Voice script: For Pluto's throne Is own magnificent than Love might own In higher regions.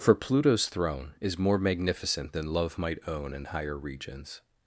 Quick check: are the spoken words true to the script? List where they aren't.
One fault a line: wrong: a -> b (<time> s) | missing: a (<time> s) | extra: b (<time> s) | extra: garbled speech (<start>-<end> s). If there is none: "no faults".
wrong: own -> more (1.4 s)